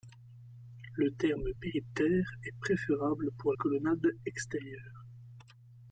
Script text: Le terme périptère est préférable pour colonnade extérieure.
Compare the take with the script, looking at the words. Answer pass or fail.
pass